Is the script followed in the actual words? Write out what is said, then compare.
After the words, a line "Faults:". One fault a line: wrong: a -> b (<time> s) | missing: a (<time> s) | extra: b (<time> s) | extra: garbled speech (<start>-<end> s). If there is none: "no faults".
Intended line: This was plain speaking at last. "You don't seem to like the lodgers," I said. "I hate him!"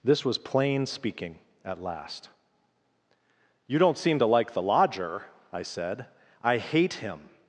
This was plain speaking at last. "You don't seem to like the lodger," I said. "I hate him!"
Faults:
wrong: lodgers -> lodger (4.6 s)